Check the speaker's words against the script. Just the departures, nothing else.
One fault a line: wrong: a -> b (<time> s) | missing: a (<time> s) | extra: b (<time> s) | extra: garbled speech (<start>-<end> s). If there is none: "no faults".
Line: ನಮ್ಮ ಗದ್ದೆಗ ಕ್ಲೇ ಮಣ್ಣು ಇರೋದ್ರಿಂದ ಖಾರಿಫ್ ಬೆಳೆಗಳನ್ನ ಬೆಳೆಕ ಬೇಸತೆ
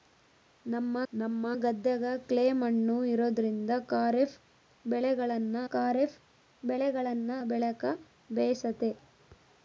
extra: ನಮ್ಮ (1.1 s)
extra: ಖಾರಿಫ್ ಬೆಳೆಗಳನ್ನ (5.7 s)